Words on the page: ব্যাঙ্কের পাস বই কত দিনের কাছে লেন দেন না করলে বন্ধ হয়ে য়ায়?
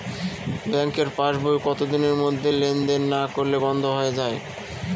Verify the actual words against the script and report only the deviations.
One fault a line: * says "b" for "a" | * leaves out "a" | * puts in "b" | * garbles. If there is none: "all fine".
* says "মধ্যে" for "কাছে"